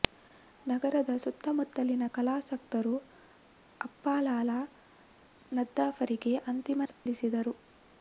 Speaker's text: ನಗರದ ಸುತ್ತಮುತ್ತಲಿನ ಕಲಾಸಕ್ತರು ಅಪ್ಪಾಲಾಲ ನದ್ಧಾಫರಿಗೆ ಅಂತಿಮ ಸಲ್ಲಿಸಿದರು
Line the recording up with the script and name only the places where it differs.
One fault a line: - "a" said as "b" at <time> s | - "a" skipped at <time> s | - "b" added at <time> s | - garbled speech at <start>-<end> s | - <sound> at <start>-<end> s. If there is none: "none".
- dropout at 6.9-7.1 s